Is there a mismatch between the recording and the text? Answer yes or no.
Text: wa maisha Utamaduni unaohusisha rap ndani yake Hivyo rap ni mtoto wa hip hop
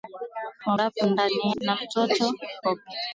yes